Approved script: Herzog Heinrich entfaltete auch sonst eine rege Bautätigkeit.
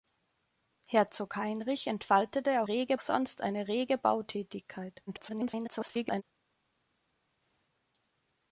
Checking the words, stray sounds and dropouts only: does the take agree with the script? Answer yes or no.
no